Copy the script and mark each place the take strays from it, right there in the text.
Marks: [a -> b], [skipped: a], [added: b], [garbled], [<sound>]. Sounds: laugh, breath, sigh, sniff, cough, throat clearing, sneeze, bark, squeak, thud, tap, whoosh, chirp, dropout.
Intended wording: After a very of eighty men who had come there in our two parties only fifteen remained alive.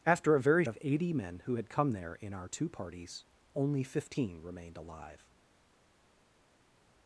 After a very of eighty men who had come there in our two parties only fifteen remained alive.